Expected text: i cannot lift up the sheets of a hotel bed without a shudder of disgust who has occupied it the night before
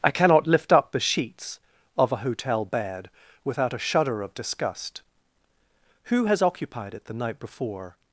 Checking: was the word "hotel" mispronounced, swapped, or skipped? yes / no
no